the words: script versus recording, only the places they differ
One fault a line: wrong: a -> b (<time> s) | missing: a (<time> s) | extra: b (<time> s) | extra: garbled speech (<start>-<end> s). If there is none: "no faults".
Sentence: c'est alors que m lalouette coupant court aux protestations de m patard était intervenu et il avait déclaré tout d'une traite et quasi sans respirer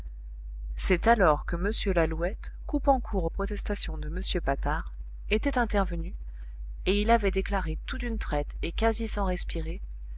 no faults